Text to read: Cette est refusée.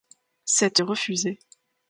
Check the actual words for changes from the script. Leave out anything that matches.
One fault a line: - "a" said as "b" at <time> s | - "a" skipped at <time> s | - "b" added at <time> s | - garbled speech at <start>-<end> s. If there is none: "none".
none